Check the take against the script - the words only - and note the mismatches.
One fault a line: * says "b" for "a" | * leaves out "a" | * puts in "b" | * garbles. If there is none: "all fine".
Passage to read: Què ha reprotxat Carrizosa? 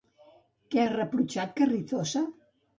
all fine